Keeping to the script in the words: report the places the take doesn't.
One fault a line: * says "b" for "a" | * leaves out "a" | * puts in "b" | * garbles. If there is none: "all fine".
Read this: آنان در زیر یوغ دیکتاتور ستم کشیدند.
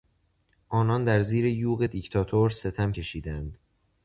all fine